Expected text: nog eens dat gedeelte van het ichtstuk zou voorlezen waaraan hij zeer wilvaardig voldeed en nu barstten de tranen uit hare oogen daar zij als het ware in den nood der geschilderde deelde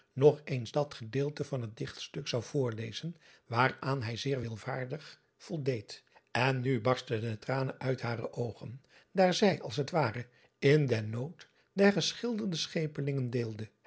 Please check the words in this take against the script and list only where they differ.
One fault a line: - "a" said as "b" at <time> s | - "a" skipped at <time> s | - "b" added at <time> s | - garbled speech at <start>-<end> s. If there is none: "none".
- "schepelingen" added at 12.6 s